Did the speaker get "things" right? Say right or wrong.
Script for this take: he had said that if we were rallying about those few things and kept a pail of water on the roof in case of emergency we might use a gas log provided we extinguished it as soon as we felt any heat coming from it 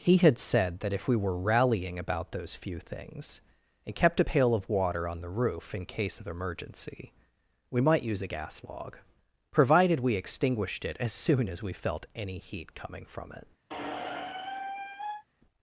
right